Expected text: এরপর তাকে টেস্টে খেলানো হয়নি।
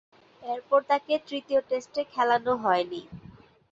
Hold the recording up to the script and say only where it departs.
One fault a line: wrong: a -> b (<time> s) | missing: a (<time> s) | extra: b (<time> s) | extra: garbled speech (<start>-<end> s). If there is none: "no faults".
extra: তৃতীয় (1.3 s)